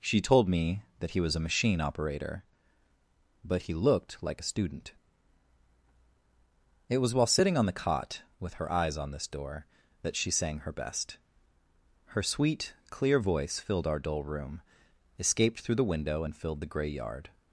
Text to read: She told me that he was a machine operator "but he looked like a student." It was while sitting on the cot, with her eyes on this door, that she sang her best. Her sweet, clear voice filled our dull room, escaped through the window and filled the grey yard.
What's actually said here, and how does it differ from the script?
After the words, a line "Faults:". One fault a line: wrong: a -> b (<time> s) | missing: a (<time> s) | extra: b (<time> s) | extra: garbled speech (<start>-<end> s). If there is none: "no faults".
She told me that he was a machine operator "but he looked like a student." It was while sitting on the cot, with her eyes on this door, that she sang her best. Her sweet, clear voice filled our dull room, escaped through the window and filled the grey yard.
Faults:
no faults